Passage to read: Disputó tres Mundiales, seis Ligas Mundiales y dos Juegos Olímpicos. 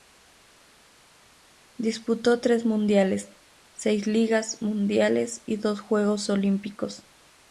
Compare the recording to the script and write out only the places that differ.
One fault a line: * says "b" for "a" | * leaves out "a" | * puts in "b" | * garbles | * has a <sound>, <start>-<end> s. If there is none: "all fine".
all fine